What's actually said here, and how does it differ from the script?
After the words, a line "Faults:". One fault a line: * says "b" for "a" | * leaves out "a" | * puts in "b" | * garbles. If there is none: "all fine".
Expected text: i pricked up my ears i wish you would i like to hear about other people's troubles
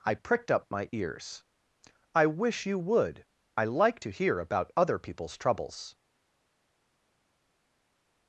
i pricked up my ears i wish you would i like to hear about other people's troubles
Faults:
all fine